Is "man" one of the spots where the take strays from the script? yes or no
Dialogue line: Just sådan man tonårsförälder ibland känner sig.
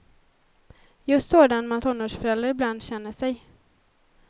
no